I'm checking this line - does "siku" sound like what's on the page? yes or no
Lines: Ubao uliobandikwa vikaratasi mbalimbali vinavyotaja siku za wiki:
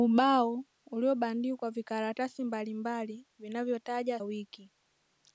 no